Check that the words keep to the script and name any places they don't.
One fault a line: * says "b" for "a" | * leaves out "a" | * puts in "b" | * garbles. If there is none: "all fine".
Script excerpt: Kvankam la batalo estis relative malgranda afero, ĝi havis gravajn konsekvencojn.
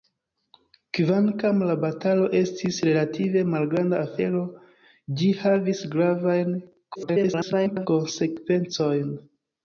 * garbles